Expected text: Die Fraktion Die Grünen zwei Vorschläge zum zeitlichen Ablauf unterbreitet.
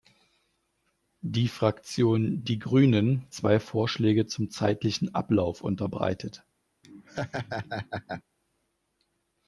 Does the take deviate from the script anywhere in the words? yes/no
no